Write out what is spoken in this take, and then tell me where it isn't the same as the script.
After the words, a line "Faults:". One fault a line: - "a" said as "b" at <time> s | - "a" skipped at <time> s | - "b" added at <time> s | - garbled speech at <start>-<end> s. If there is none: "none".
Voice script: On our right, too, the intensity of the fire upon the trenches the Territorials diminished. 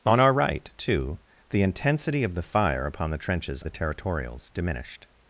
On our right, too, the intensity of the fire upon the trenches the Territorials diminished.
Faults:
none